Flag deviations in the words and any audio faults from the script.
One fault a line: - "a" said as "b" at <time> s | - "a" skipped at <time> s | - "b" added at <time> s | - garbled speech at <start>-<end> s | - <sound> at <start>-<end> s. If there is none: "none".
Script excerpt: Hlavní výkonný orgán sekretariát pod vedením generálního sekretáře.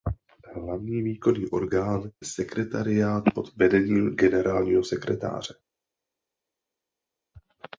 none